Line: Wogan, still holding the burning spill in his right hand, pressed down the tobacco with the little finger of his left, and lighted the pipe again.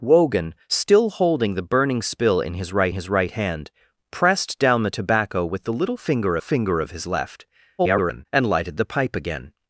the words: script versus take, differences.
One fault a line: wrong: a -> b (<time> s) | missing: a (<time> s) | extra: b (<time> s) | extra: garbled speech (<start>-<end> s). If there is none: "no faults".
extra: his right (2.9 s)
extra: finger (6.4 s)
extra: garbled speech (7.8-8.3 s)